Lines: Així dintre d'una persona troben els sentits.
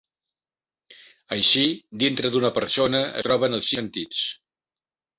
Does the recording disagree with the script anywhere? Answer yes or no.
no